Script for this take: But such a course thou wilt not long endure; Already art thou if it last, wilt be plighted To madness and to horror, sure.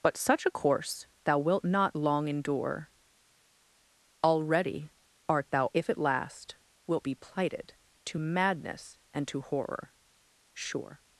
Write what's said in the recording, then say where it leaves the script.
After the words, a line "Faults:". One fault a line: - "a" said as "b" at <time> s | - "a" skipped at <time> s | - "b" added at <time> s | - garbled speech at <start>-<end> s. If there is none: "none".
But such a course thou wilt not long endure; Already art thou if it last, wilt be plighted To madness and to horror, sure.
Faults:
none